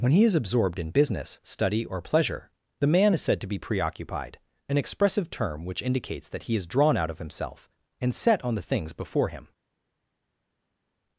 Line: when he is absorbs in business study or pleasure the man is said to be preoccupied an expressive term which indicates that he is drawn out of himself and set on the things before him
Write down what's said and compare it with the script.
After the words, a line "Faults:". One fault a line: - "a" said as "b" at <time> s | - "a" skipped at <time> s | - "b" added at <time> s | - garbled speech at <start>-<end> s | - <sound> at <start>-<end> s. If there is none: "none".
when he is absorbed in business study or pleasure the man is said to be preoccupied an expressive term which indicates that he is drawn out of himself and set on the things before him
Faults:
- "absorbs" said as "absorbed" at 0.3 s